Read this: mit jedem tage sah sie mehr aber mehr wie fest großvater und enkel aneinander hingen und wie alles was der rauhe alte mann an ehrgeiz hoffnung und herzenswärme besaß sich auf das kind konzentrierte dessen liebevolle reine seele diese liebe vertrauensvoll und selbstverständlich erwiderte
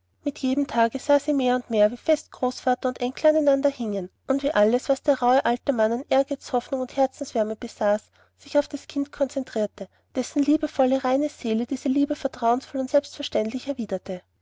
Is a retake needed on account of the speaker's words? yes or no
yes